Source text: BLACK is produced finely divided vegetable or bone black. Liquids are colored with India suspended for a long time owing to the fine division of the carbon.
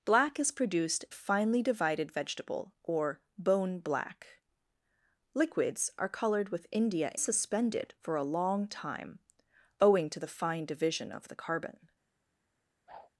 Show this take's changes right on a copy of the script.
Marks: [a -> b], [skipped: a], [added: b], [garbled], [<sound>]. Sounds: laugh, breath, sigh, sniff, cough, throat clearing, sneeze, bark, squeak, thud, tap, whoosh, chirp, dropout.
BLACK is produced finely divided vegetable or bone black. Liquids are colored with India suspended for a long time owing to the fine division of the carbon. [whoosh]